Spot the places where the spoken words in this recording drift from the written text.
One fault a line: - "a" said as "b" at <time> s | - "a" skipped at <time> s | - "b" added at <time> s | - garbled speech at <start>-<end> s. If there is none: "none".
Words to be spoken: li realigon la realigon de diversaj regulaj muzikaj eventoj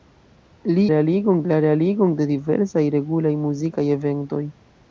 none